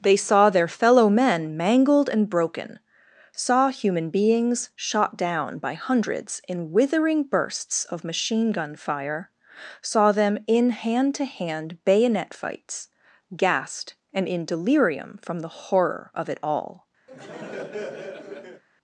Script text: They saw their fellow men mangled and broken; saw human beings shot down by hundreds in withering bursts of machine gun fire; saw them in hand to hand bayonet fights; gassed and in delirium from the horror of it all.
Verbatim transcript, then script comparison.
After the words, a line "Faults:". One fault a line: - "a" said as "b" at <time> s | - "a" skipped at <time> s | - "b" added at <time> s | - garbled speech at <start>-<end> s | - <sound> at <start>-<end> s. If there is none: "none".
They saw their fellow men mangled and broken; saw human beings shot down by hundreds in withering bursts of machine gun fire; saw them in hand to hand bayonet fights; gassed and in delirium from the horror of it all.
Faults:
- laugh at 17.1-18.6 s